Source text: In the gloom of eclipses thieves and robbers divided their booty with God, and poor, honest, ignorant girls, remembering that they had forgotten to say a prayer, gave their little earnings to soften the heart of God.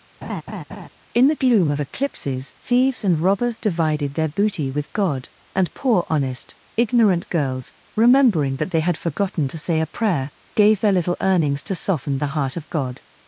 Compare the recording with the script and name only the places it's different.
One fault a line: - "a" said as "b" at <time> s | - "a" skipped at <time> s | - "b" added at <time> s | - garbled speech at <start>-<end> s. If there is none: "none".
none